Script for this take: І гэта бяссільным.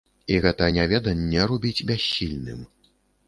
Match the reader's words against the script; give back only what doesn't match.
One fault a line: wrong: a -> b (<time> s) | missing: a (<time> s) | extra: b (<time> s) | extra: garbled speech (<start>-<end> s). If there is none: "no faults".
extra: няведанне робіць (0.7 s)